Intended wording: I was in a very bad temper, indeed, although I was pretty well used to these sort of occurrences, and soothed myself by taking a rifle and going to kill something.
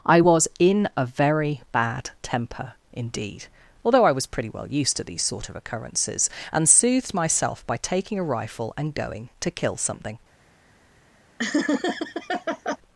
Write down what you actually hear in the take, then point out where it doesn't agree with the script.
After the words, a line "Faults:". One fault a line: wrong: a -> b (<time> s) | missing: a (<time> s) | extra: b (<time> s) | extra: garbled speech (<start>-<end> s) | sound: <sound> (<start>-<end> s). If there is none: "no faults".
I was in a very bad temper, indeed, although I was pretty well used to these sort of occurrences, and soothed myself by taking a rifle and going to kill something.
Faults:
sound: laugh (11.4-12.8 s)